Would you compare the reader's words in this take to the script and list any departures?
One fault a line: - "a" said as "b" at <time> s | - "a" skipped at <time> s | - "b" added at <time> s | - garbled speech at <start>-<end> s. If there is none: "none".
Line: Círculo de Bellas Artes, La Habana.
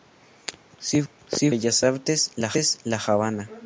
none